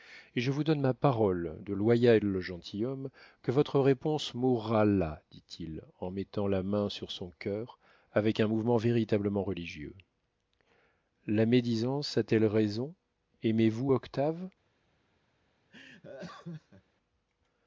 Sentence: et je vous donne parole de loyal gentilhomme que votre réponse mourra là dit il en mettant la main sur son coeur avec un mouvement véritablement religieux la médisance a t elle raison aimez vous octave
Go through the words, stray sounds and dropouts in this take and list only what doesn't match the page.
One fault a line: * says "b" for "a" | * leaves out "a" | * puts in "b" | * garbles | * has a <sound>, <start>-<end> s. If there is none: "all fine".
* puts in "ma"
* has a laugh, 15.7-16.8 s